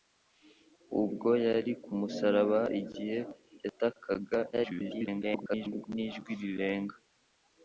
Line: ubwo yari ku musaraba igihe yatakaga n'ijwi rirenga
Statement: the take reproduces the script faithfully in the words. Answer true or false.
false